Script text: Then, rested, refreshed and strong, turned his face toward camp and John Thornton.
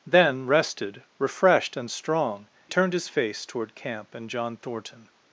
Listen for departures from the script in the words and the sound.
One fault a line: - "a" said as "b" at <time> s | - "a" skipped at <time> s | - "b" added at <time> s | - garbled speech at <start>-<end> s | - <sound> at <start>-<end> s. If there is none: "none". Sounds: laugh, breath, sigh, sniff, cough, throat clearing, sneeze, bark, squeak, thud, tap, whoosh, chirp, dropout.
none